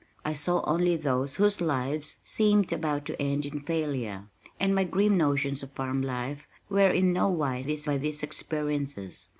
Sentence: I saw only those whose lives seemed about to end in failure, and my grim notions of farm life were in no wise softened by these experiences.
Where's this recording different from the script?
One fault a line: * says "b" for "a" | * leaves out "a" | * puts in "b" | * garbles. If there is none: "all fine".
* says "these" for "softened"